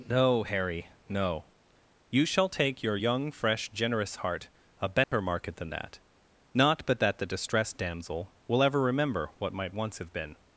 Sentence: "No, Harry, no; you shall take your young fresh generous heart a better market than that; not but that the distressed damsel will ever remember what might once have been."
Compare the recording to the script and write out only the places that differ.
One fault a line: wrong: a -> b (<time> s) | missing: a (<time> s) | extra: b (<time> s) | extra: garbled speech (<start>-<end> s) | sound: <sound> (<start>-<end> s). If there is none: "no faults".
sound: dropout (5.0-5.1 s)